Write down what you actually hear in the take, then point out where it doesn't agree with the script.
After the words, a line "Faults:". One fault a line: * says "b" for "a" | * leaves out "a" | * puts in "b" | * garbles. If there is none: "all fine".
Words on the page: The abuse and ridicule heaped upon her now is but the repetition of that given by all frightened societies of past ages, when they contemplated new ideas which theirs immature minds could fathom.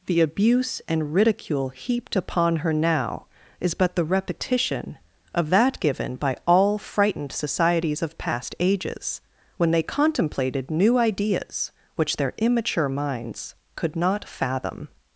The abuse and ridicule heaped upon her now is but the repetition of that given by all frightened societies of past ages, when they contemplated new ideas which their immature minds could not fathom.
Faults:
* says "their" for "theirs"
* puts in "not"